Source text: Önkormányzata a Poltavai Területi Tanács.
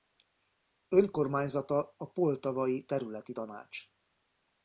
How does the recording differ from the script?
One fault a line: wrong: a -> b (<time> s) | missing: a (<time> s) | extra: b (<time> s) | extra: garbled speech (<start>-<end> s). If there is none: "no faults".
no faults